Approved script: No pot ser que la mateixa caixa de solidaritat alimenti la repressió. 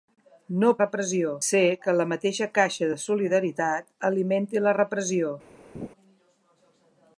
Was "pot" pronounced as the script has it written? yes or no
no